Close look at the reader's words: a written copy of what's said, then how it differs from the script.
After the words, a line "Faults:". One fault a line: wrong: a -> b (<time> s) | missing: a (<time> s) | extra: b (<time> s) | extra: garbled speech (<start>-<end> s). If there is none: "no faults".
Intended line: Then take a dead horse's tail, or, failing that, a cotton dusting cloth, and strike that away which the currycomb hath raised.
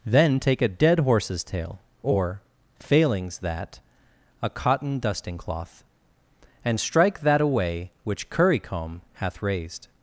Then take a dead horse's tail, or, failings that, a cotton dusting cloth, and strike that away which currycomb hath raised.
Faults:
wrong: failing -> failings (2.8 s)
missing: the (8.3 s)